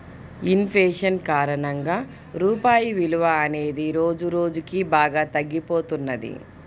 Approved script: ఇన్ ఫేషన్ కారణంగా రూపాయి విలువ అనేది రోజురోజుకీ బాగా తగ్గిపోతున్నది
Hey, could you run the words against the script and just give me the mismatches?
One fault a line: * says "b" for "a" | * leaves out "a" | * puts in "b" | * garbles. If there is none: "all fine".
all fine